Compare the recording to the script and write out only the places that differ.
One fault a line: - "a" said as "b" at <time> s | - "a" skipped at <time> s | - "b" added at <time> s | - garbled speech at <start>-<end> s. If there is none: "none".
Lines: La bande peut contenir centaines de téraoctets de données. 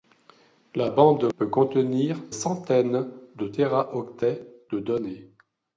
none